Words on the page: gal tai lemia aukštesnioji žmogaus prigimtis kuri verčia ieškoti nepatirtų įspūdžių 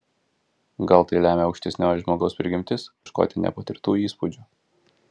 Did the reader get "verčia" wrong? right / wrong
wrong